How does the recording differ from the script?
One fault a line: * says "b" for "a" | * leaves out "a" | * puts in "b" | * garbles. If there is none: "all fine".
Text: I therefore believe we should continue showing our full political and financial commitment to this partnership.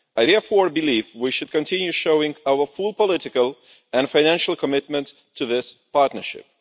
all fine